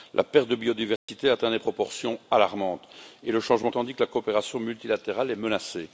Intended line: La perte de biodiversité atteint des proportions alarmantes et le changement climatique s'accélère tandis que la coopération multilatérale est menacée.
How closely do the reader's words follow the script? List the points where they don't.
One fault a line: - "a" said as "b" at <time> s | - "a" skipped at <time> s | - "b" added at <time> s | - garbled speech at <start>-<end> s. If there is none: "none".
- "climatique s'accélère" skipped at 3.7 s